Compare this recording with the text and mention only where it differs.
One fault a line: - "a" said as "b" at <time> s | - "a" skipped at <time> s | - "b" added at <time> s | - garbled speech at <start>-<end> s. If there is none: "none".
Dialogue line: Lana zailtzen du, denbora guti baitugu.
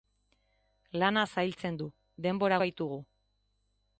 - "guti" skipped at 2.6 s